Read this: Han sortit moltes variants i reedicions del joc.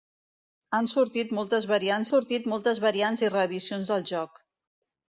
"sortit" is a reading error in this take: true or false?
false